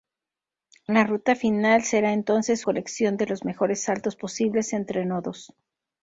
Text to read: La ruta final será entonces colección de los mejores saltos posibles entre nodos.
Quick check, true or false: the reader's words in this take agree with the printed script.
true